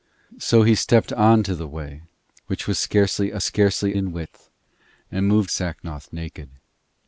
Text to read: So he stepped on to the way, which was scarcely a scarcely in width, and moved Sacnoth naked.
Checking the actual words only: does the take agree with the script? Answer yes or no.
yes